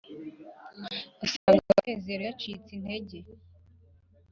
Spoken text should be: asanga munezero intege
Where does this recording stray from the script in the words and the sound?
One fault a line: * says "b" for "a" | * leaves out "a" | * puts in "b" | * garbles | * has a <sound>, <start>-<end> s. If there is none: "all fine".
* has a dropout, 1.4-1.5 s
* puts in "yacitse"